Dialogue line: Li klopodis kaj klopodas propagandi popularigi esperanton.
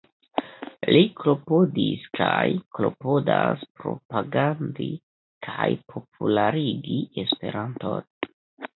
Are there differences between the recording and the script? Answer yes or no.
yes